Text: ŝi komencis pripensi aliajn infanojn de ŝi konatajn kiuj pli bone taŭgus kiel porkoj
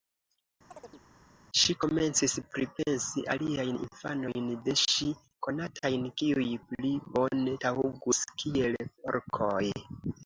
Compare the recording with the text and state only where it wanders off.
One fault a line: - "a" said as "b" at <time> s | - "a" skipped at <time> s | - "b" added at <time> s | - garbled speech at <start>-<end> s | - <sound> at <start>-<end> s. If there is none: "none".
- chirp at 0.7-1.0 s